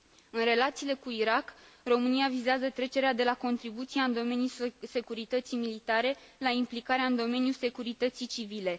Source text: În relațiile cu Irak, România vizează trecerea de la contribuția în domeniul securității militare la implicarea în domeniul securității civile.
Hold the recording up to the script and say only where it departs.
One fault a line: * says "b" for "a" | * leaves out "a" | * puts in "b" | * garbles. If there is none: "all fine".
all fine